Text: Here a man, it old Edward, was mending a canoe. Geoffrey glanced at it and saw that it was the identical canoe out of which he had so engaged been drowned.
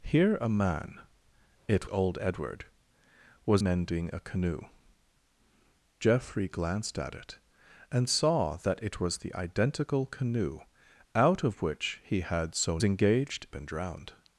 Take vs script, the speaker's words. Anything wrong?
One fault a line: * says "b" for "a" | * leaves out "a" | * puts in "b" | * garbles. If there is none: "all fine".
all fine